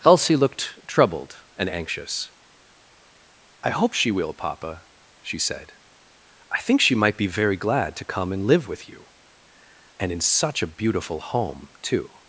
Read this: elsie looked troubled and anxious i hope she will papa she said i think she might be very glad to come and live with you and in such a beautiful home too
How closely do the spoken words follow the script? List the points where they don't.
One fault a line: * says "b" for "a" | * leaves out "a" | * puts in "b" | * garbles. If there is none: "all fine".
all fine